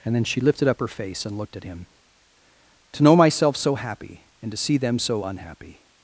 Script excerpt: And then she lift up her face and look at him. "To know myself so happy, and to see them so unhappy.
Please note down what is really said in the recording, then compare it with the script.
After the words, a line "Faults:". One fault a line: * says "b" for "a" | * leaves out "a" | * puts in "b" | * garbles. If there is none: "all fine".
And then she lifted up her face and looked at him. "To know myself so happy, and to see them so unhappy.
Faults:
* says "lifted" for "lift"
* says "looked" for "look"